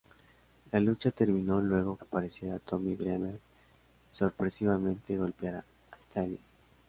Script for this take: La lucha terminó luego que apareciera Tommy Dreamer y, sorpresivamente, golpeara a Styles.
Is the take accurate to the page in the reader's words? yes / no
no